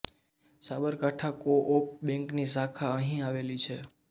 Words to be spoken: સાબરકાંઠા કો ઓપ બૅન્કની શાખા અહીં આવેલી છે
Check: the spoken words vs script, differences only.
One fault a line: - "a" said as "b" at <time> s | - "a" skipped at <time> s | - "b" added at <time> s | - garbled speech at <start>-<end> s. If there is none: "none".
none